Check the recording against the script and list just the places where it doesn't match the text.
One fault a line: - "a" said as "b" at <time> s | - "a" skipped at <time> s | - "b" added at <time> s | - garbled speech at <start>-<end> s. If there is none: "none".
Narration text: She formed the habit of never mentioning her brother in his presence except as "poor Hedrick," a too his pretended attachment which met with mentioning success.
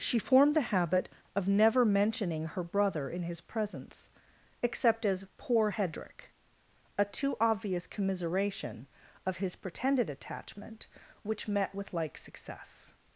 - "obvious commiseration of" added at 7.4 s
- "mentioning" said as "like" at 11.9 s